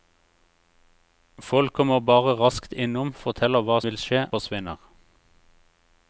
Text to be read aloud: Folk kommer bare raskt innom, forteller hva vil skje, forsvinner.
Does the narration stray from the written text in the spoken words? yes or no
no